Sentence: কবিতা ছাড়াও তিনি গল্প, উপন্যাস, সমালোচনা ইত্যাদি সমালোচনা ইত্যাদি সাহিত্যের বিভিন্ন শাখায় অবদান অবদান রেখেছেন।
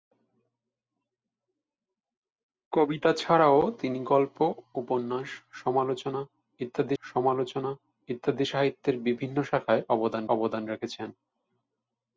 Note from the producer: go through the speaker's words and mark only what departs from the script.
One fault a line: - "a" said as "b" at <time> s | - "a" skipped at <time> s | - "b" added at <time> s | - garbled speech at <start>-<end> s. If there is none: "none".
none